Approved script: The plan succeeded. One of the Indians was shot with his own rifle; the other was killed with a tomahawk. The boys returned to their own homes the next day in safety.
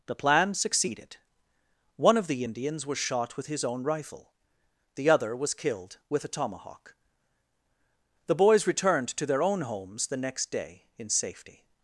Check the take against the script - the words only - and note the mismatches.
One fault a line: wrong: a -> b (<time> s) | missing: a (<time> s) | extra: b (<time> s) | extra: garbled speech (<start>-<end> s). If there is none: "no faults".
no faults